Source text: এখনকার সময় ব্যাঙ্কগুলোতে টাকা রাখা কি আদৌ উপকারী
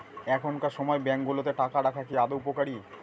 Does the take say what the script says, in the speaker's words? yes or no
yes